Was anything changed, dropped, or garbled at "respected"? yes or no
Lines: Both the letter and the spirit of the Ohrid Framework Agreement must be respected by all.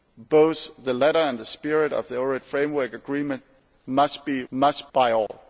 yes